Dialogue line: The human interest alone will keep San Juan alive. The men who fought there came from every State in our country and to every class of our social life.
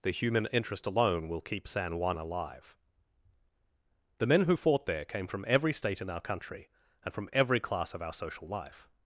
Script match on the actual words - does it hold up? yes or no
no